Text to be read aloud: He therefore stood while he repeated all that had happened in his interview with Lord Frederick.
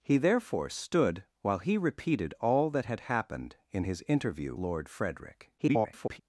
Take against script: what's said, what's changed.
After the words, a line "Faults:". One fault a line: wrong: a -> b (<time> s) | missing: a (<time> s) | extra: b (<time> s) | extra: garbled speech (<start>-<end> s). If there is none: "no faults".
He therefore stood while he repeated all that had happened in his interview Lord Frederick. [garbled]
Faults:
missing: with (4.6 s)
extra: garbled speech (5.6-6.2 s)